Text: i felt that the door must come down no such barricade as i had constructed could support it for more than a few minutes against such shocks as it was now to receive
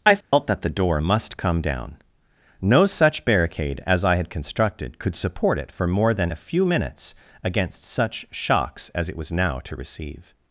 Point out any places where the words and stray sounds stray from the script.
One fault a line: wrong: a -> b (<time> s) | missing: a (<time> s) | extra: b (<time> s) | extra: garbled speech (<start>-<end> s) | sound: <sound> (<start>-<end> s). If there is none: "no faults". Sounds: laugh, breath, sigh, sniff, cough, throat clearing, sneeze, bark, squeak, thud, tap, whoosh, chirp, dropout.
sound: dropout (0.2-0.3 s)